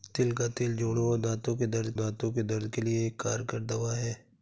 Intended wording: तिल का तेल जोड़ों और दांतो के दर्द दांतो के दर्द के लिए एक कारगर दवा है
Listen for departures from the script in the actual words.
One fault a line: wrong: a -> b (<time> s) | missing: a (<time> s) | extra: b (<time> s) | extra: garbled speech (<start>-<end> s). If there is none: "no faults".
no faults